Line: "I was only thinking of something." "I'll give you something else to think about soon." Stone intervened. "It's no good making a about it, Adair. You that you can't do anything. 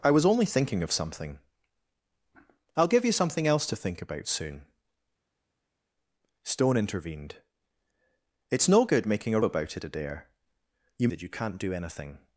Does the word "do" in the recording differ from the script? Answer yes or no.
no